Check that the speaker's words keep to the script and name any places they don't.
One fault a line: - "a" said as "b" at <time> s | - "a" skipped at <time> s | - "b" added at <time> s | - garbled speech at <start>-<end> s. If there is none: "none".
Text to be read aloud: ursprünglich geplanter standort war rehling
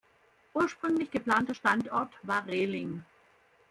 none